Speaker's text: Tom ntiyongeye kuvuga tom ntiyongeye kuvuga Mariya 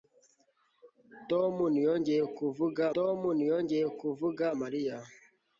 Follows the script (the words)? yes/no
yes